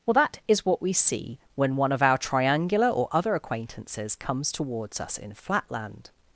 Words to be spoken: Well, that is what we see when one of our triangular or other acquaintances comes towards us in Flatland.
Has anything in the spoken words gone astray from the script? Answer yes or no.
no